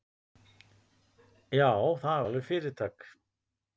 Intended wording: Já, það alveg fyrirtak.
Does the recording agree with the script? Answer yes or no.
yes